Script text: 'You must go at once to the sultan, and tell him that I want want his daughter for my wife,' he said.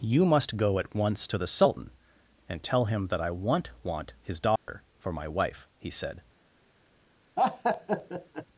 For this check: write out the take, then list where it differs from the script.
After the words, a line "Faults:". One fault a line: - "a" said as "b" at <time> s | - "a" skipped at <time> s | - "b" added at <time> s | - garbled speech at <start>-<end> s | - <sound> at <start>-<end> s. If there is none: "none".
'You must go at once to the sultan, and tell him that I want want his daughter for my wife,' he said.
Faults:
- dropout at 4.6-4.7 s
- laugh at 7.4-8.5 s